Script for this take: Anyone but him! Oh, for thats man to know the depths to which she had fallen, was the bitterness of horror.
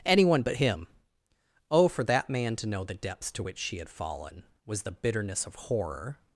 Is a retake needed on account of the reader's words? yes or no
yes